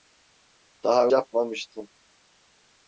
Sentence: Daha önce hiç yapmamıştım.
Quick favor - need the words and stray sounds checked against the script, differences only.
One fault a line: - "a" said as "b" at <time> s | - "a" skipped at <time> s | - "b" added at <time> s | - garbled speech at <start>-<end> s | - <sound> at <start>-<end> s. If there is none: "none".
- "önce hiç" skipped at 1.1 s